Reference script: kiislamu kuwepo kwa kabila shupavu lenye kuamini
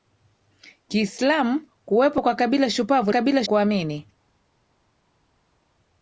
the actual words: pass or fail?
fail